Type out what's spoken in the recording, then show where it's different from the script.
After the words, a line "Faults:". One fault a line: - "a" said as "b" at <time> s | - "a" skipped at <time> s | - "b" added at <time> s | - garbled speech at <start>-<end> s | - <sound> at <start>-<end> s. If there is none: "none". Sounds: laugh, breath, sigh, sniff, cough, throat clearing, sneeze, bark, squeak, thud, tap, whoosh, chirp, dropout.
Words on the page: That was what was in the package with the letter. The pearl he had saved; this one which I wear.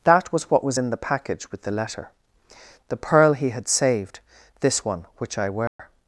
That was what was in the package with the letter. The pearl he had saved; this one which I wear.
Faults:
- dropout at 5.7-5.8 s